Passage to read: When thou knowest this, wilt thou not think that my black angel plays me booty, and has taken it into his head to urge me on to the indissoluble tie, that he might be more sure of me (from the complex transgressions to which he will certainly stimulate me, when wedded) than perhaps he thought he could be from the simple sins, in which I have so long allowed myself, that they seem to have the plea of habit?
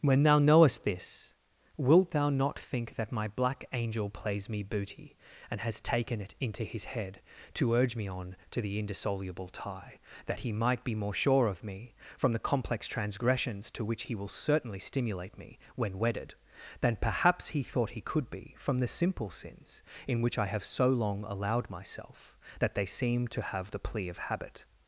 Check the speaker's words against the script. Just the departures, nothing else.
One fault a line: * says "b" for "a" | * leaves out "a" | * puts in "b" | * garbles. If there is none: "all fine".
all fine